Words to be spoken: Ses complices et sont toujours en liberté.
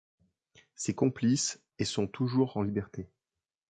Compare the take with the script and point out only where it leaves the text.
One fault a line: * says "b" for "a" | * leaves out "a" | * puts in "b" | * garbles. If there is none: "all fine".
all fine